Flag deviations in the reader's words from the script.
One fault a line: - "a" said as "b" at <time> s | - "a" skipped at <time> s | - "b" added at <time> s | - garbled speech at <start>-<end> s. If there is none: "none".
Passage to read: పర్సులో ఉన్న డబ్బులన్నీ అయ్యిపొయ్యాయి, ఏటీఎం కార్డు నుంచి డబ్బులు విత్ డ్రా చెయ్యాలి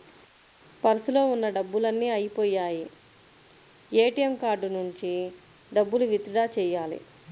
none